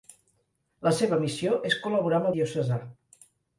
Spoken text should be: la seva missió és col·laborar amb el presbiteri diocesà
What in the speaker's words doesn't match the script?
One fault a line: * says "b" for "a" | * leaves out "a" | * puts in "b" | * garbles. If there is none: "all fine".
* leaves out "el presbiteri"